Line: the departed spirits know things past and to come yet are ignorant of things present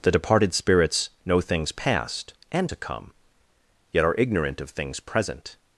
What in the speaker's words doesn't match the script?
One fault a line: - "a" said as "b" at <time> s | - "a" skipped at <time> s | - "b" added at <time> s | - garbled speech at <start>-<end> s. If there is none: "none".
none